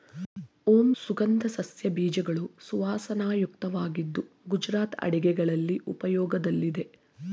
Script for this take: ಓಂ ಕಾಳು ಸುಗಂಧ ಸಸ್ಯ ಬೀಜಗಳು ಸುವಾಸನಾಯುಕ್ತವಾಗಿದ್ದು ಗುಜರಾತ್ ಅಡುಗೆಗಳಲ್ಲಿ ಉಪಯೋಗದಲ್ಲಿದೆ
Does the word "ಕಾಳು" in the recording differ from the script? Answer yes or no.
yes